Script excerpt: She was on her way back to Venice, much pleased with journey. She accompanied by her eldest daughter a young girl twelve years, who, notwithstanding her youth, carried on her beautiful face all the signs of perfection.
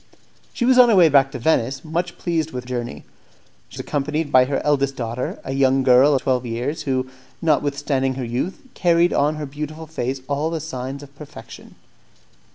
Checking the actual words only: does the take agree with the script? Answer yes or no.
yes